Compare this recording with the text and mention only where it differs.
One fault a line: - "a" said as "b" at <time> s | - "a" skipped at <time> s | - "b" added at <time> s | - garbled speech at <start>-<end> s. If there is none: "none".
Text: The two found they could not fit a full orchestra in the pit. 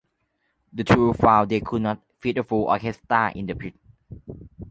none